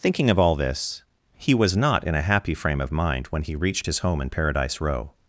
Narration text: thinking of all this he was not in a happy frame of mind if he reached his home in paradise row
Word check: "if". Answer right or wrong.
wrong